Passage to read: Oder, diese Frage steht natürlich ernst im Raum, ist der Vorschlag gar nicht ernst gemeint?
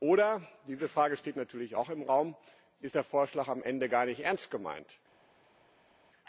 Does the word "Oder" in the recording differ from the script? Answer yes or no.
no